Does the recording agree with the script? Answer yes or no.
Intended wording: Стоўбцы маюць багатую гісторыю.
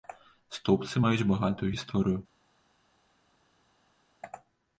yes